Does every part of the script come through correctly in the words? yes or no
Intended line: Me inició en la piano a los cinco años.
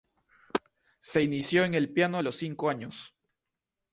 no